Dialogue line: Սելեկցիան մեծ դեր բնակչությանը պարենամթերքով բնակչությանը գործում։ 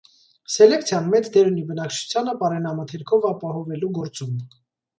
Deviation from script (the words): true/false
true